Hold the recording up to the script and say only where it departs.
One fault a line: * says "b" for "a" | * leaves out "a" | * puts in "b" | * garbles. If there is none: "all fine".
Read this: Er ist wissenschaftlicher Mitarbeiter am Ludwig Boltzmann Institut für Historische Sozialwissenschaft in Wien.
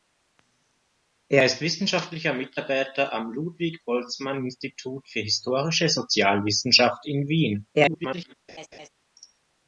* garbles